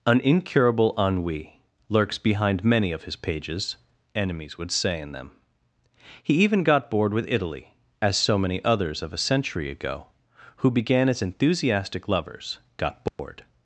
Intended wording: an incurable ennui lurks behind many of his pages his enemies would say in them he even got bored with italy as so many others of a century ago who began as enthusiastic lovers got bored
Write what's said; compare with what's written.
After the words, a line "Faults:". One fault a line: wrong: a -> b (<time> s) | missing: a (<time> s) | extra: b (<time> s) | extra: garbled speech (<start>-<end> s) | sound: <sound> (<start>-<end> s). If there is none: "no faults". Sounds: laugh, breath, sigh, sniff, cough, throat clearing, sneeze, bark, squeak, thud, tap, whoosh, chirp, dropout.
an incurable ennui lurks behind many of his pages enemies would say in them he even got bored with italy as so many others of a century ago who began as enthusiastic lovers got bored
Faults:
missing: his (3.8 s)
sound: dropout (13.1-13.2 s)